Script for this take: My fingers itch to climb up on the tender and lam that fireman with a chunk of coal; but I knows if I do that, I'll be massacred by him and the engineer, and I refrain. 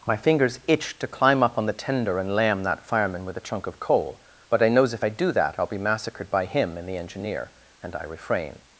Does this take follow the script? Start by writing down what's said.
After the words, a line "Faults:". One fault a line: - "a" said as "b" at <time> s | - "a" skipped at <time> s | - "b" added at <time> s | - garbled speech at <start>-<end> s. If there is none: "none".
My fingers itch to climb up on the tender and lam that fireman with a chunk of coal; but I knows if I do that, I'll be massacred by him and the engineer, and I refrain.
Faults:
none